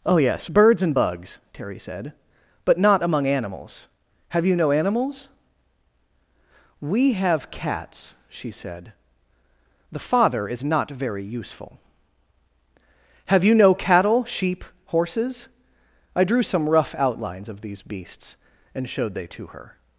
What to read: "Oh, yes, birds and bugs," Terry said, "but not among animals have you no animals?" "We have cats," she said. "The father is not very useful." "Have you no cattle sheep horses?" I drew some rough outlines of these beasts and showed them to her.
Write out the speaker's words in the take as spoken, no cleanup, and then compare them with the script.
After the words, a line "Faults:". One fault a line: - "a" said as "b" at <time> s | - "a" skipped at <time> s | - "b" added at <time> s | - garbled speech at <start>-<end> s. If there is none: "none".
"Oh, yes, birds and bugs," Terry said, "but not among animals have you no animals?" "We have cats," she said. "The father is not very useful." "Have you no cattle sheep horses?" I drew some rough outlines of these beasts and showed they to her.
Faults:
- "them" said as "they" at 19.1 s